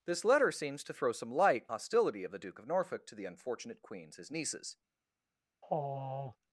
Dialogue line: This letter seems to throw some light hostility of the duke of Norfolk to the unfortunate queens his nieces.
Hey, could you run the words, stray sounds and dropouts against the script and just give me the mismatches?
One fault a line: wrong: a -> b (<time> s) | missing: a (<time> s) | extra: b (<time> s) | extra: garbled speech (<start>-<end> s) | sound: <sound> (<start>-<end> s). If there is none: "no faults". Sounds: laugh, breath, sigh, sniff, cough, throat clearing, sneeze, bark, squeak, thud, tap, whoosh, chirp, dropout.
sound: sigh (5.6-6.4 s)